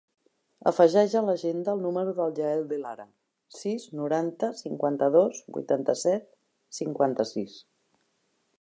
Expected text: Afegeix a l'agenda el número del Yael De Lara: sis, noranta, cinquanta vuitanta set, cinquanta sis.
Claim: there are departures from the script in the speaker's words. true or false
true